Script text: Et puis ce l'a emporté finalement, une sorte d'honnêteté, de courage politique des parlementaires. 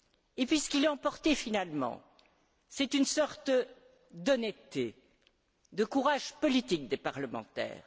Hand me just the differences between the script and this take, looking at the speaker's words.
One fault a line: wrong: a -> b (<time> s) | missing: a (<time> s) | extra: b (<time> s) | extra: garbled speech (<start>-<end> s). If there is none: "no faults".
extra: qui (0.7 s)
extra: c'est (2.7 s)